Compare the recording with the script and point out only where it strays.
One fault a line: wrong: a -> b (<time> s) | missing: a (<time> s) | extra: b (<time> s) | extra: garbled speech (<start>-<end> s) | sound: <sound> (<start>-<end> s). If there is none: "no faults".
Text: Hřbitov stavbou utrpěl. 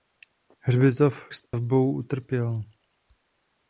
sound: dropout (1.5-1.5 s)